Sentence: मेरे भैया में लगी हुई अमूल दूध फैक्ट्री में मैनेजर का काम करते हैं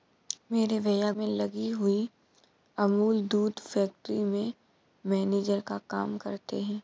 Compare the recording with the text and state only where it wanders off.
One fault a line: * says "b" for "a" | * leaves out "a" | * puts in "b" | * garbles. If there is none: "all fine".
all fine